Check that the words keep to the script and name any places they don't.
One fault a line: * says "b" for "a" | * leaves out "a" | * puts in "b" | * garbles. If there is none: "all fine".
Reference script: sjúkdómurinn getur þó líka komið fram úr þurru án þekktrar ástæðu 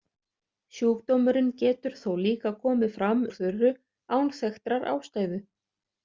all fine